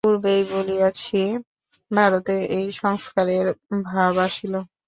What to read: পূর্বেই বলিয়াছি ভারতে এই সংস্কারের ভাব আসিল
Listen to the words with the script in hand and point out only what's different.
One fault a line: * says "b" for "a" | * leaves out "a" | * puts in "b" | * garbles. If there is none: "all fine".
all fine